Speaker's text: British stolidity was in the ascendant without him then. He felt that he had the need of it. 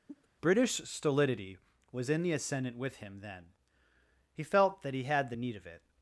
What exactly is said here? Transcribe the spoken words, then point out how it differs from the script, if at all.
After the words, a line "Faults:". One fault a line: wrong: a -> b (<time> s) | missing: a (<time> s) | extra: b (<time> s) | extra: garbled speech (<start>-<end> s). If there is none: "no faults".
British stolidity was in the ascendant with him then. He felt that he had the need of it.
Faults:
wrong: without -> with (2.8 s)